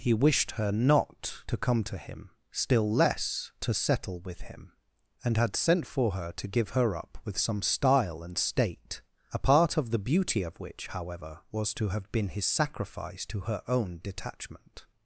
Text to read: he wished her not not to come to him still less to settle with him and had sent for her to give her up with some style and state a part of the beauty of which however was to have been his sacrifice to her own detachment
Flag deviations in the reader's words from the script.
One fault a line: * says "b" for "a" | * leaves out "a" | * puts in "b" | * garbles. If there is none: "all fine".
* leaves out "not"